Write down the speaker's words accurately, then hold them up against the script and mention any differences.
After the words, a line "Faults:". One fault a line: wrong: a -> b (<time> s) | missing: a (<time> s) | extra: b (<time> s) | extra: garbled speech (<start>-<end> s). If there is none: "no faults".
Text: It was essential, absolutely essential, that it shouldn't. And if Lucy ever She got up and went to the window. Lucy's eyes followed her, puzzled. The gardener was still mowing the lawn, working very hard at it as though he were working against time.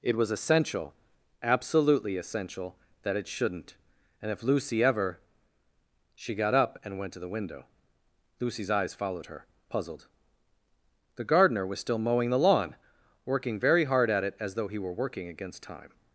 It was essential, absolutely essential, that it shouldn't. And if Lucy ever She got up and went to the window. Lucy's eyes followed her, puzzled. The gardener was still mowing the lawn, working very hard at it as though he were working against time.
Faults:
no faults